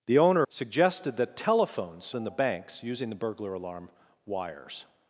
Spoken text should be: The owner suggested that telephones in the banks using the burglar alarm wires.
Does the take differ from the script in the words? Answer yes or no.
no